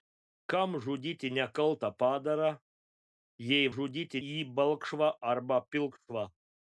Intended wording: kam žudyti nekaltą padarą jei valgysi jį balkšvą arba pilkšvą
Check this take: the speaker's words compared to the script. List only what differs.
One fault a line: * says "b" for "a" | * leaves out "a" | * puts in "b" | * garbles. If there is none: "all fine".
* says "žudyti" for "valgysi"